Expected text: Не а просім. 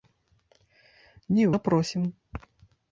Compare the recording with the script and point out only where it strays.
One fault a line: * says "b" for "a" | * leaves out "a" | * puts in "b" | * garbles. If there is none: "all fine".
all fine